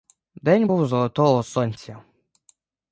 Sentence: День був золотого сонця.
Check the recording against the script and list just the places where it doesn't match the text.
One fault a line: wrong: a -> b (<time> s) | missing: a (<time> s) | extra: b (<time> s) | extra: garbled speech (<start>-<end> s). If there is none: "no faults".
no faults